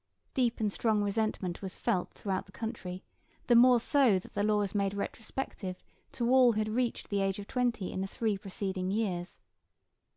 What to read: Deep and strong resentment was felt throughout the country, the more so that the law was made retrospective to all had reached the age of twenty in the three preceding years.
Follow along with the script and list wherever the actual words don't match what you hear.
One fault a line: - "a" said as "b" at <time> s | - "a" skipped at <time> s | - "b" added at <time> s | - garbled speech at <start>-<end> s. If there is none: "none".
none